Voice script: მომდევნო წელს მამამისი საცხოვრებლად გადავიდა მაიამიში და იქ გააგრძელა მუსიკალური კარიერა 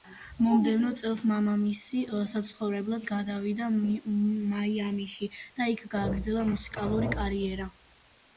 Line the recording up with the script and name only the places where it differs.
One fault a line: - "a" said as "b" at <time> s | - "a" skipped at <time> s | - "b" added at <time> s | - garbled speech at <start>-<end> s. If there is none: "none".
none